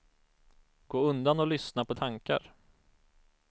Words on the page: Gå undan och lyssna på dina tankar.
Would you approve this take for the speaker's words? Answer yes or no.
no